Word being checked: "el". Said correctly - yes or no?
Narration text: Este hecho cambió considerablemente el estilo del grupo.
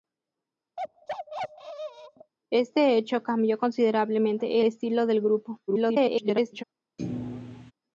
no